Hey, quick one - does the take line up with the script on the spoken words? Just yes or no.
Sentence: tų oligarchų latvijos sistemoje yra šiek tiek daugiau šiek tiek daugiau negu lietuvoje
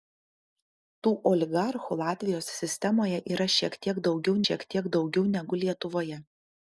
yes